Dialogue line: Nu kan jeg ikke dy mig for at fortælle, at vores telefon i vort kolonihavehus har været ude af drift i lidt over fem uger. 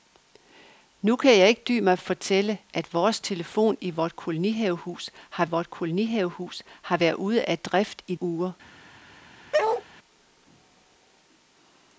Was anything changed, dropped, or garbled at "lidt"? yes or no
yes